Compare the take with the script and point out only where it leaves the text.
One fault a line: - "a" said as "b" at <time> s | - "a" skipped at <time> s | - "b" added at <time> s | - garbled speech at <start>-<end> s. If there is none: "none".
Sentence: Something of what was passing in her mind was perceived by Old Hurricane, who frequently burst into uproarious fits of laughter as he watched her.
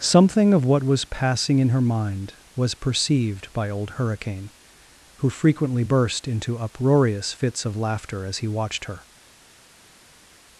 none